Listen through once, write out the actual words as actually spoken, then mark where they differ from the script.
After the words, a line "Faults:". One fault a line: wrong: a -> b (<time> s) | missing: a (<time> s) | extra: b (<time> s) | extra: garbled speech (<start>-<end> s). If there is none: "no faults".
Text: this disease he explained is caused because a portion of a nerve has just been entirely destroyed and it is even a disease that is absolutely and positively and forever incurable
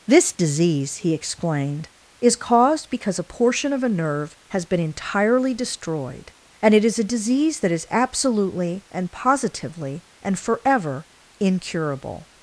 this disease he explained is caused because a portion of a nerve has been entirely destroyed and it is a disease that is absolutely and positively and forever incurable
Faults:
missing: just (4.6 s)
missing: even (7.0 s)